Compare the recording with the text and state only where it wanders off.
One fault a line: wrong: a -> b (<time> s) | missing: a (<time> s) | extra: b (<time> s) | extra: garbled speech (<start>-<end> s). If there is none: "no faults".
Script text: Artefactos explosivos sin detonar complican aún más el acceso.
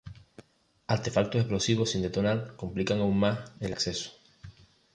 no faults